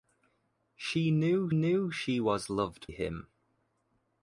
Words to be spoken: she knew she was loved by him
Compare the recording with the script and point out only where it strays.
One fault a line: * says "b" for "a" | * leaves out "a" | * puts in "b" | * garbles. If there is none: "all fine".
* puts in "knew"
* leaves out "by"